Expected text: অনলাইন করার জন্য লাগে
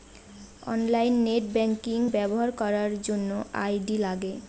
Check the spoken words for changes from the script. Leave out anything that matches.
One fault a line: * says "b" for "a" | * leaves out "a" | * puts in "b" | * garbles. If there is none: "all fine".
* puts in "নেট ব্যাঙ্কিং ব্যবহার"
* puts in "আই.ডি"